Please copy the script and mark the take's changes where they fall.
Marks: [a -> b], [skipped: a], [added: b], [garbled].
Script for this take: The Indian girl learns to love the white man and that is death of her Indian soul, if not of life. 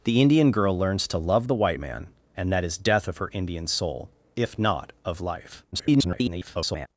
The Indian girl learns to love the white man and that is death of her Indian soul, if not of life. [garbled]